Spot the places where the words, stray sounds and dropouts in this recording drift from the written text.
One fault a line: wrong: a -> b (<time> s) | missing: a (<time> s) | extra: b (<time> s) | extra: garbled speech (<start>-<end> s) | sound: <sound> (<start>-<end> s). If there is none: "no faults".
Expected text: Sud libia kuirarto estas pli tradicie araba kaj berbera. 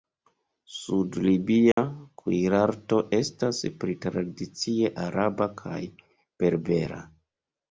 sound: dropout (1.7-1.8 s)